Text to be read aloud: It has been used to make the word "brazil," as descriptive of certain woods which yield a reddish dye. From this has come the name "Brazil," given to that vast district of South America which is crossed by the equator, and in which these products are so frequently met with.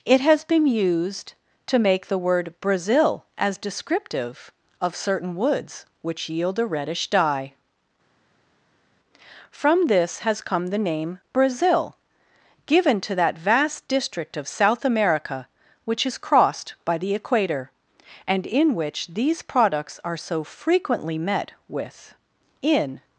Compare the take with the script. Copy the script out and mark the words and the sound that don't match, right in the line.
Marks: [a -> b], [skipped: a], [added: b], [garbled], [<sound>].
It has been used to make the word "brazil," as descriptive of certain woods which yield a reddish dye. From this has come the name "Brazil," given to that vast district of South America which is crossed by the equator, and in which these products are so frequently met with. [added: In]